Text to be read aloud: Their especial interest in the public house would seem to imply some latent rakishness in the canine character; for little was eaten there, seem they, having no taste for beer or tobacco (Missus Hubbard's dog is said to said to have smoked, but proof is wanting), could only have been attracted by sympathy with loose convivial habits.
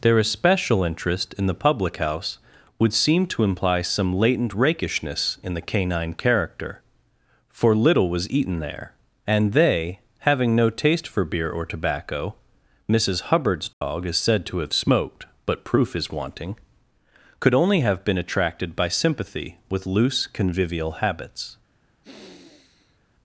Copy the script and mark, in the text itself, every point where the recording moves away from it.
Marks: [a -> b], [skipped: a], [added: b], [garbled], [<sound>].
Their especial interest in the public house would seem to imply some latent rakishness in the canine character; for little was eaten there, [seem -> and] they, having no taste for beer or tobacco (Missus Hubbard's dog [dropout] is said to [skipped: said to] have smoked, but proof is wanting), could only have been attracted by sympathy with loose convivial habits. [sniff]